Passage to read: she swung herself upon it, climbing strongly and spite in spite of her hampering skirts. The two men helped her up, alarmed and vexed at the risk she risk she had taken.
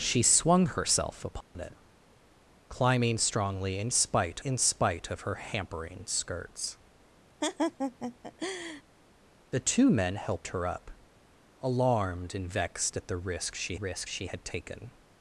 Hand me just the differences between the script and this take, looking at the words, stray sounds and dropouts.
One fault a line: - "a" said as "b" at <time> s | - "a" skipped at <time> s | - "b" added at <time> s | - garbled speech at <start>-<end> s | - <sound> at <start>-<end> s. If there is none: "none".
- dropout at 1.4-1.6 s
- laugh at 7.4-8.8 s